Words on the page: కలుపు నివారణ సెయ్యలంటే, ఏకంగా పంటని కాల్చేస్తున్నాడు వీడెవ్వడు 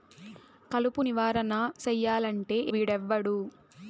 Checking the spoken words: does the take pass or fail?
fail